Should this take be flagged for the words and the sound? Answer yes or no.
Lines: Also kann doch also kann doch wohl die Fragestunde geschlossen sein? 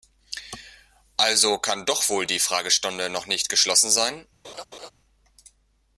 yes